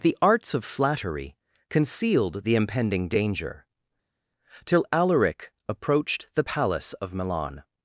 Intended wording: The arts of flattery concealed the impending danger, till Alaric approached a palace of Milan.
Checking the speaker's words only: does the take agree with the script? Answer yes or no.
no